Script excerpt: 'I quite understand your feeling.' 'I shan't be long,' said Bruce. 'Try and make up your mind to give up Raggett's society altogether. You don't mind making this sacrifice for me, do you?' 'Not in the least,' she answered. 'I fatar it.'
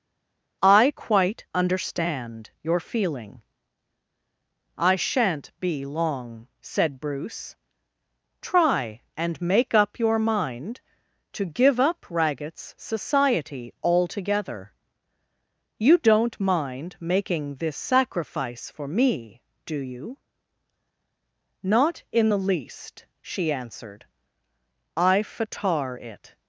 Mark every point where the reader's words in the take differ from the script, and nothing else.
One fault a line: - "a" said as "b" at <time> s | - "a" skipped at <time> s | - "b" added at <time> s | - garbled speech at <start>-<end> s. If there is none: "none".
none